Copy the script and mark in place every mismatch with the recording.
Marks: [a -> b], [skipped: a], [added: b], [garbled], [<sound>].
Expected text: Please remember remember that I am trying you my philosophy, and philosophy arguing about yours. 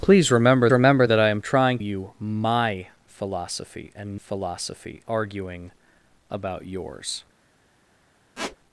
Please remember remember that I am trying you my philosophy, and philosophy arguing about yours. [squeak]